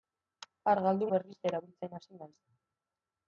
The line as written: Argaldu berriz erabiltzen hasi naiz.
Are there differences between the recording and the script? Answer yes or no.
no